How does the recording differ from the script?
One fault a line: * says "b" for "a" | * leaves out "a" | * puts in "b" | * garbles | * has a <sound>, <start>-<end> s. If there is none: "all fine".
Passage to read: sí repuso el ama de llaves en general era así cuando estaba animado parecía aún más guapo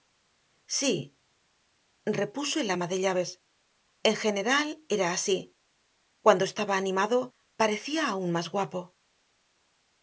all fine